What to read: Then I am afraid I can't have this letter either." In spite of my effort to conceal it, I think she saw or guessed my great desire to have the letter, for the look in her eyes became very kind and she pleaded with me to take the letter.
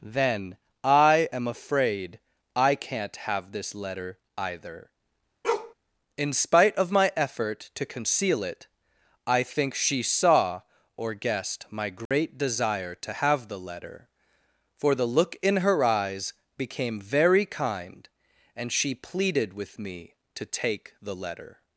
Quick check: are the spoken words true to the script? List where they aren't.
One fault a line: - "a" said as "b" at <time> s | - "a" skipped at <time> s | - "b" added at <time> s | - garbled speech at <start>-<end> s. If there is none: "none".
none